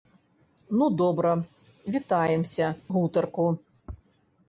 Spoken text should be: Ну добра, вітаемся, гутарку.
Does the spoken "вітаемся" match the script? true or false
true